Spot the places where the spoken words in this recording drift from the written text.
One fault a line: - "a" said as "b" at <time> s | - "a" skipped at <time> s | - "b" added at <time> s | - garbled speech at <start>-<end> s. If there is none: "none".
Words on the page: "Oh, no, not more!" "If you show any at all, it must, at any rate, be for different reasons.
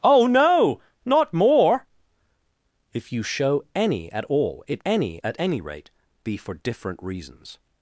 - "must" said as "any" at 4.9 s